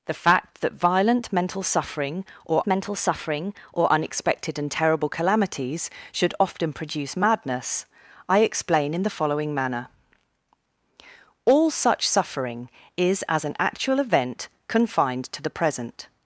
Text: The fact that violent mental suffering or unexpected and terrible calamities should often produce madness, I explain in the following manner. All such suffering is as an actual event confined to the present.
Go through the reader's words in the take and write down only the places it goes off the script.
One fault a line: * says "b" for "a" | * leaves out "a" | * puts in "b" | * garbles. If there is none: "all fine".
* puts in "mental suffering or"